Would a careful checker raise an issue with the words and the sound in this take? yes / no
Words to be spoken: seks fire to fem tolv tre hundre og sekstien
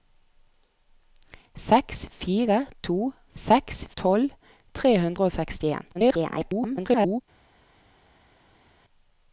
yes